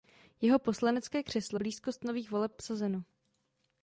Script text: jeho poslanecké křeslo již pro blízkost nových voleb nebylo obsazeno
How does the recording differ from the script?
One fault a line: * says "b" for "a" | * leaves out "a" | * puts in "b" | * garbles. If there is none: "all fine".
* leaves out "již pro"
* leaves out "nebylo"